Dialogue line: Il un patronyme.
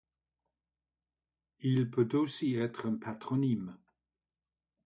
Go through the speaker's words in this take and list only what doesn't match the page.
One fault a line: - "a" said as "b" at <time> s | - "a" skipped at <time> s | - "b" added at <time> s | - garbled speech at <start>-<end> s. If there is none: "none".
- "peut aussi être" added at 1.9 s